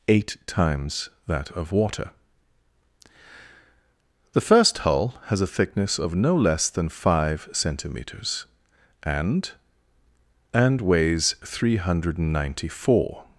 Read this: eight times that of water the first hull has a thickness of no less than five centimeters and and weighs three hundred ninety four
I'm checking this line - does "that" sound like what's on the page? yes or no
yes